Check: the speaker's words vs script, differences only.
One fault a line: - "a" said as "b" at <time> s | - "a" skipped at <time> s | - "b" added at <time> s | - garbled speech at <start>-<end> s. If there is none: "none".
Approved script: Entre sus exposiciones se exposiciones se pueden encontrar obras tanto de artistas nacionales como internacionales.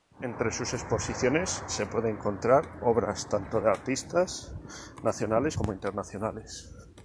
- "exposiciones se" skipped at 1.9 s